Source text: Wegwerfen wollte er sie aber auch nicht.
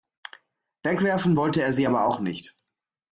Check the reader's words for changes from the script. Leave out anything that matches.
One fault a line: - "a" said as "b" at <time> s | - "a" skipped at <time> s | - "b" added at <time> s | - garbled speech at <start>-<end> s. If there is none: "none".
none